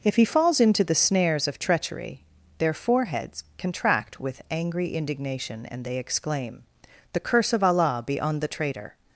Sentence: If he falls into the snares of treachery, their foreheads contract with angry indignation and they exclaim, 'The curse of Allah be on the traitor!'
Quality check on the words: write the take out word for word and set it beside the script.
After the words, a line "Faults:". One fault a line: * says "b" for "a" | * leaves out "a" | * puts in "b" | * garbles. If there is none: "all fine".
If he falls into the snares of treachery, their foreheads contract with angry indignation and they exclaim, 'The curse of Allah be on the traitor!'
Faults:
all fine